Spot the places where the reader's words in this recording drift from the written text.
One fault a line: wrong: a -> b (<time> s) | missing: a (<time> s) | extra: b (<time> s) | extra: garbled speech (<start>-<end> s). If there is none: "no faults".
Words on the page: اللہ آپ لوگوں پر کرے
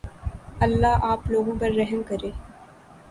extra: رحم (1.7 s)